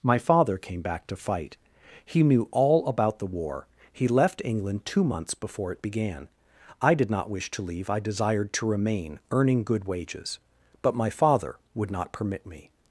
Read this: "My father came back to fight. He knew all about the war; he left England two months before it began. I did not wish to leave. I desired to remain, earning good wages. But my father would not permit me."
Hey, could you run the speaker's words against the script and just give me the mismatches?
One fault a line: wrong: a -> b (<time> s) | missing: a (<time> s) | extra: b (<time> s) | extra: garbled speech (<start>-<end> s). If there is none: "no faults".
no faults